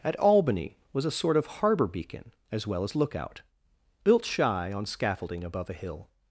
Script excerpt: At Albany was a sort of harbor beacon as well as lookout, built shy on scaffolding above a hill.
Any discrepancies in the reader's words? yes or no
no